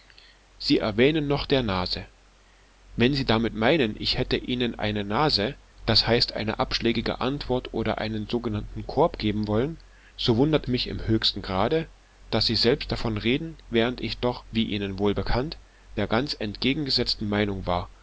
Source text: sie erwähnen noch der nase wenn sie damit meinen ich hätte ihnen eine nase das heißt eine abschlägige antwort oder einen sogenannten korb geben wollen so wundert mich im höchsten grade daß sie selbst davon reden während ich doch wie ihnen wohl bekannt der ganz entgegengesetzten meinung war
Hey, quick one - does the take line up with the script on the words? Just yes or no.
yes